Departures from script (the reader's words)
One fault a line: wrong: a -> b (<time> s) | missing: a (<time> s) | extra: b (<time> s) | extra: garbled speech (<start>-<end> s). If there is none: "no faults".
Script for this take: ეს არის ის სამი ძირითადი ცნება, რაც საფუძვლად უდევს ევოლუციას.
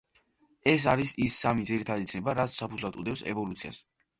no faults